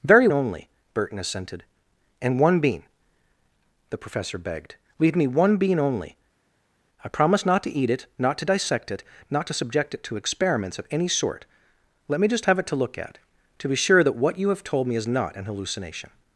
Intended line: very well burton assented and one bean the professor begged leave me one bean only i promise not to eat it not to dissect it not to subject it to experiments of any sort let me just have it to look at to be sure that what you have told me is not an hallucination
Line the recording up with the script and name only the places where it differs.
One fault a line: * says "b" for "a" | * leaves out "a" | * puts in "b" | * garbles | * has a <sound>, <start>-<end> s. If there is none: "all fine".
* says "only" for "well"